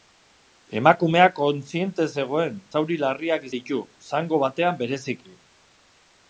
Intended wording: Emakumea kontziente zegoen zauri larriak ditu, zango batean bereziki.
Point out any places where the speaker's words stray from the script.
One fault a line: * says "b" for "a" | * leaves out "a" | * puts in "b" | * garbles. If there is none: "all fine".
all fine